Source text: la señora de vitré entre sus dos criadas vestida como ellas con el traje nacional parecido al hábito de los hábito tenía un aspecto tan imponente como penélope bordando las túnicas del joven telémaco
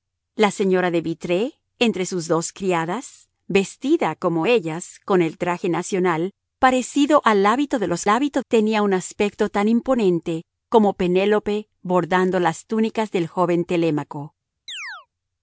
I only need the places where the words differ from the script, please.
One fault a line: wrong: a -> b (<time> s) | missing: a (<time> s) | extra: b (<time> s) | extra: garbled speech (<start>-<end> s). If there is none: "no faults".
no faults